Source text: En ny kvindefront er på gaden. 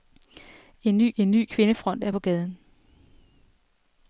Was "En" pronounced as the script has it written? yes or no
yes